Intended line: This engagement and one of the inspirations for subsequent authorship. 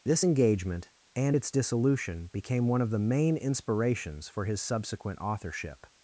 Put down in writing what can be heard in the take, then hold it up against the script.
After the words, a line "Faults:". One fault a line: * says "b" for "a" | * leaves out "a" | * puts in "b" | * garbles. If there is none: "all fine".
This engagement and its dissolution became one of the main inspirations for his subsequent authorship.
Faults:
* puts in "its dissolution became"
* puts in "main"
* puts in "his"